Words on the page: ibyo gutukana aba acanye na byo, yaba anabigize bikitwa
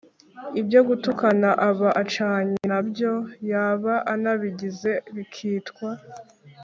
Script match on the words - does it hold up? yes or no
yes